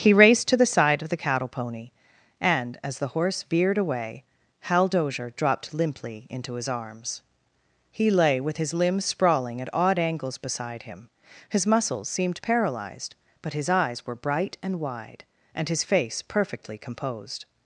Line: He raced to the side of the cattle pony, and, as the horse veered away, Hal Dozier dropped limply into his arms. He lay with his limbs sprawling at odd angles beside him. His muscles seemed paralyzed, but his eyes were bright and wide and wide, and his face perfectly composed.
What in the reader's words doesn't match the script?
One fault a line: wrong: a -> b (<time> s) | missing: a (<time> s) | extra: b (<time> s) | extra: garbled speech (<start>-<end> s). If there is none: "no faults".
missing: wide and (15.7 s)